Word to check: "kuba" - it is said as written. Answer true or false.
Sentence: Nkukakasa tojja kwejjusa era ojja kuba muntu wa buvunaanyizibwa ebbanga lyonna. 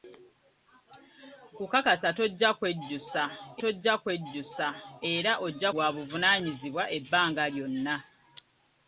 false